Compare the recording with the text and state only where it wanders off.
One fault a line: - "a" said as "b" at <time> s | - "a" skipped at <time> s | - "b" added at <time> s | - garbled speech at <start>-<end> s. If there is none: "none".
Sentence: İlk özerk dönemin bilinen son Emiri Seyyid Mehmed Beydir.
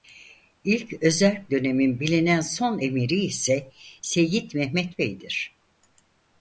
- "ise" added at 3.2 s